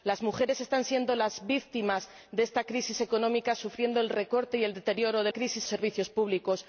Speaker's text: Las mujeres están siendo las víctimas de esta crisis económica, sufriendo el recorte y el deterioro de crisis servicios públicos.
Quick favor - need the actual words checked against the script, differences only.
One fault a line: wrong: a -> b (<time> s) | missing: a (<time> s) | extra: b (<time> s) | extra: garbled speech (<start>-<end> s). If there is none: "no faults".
no faults